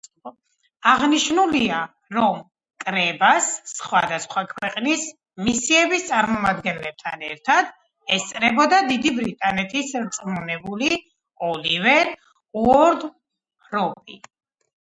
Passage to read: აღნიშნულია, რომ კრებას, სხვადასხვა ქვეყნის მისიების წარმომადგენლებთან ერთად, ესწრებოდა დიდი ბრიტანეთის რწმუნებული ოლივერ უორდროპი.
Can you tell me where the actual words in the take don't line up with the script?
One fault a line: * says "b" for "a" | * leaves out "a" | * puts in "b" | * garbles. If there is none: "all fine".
all fine